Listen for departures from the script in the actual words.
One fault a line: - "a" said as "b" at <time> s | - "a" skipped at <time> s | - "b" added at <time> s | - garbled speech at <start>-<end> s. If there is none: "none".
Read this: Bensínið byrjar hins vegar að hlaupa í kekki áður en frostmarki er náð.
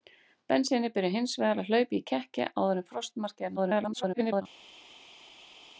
- garbled speech at 3.6-4.4 s